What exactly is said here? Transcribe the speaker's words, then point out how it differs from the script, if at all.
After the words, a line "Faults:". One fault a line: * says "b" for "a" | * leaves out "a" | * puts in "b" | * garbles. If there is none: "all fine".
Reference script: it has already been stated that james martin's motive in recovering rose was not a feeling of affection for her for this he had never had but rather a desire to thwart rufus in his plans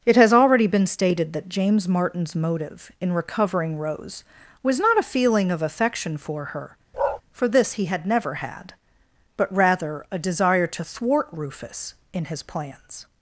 it has already been stated that james martin's motive in recovering rose was not a feeling of affection for her for this he had never had but rather a desire to thwart rufus in his plans
Faults:
all fine